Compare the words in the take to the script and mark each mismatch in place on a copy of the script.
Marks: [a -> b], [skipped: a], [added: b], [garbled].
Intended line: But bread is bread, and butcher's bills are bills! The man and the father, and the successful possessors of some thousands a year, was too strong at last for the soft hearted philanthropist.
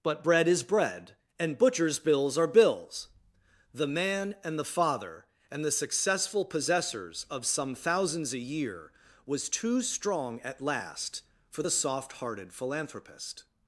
But bread is bread, and butcher's bills are bills! The man and the father, and the successful possessors of some thousands a year, was too strong at last for the soft hearted philanthropist.